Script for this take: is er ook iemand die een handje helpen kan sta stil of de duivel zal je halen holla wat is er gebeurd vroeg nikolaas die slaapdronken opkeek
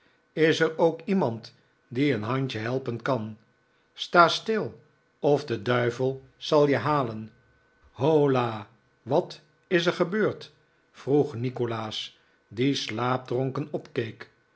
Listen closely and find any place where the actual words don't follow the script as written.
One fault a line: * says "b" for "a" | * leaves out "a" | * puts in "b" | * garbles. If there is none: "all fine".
all fine